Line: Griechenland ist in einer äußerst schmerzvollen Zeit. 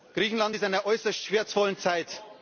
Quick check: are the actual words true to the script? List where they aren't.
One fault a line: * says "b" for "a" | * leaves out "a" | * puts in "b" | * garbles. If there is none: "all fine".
all fine